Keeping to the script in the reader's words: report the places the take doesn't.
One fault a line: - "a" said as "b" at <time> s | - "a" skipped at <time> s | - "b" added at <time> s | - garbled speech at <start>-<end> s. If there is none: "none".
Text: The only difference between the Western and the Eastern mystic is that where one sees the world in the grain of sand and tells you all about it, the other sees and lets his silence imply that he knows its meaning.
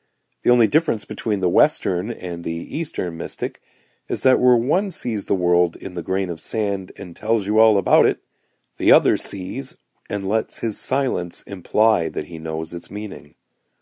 none